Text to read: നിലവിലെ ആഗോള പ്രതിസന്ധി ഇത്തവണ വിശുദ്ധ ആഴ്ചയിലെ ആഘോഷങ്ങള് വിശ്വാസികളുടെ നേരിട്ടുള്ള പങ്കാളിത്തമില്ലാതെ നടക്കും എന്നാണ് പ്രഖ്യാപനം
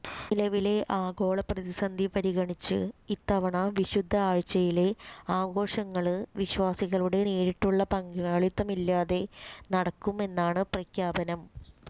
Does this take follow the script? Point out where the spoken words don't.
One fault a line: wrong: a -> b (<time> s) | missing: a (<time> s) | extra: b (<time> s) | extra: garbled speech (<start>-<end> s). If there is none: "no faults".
extra: പരിഗണിച്ച് (2.1 s)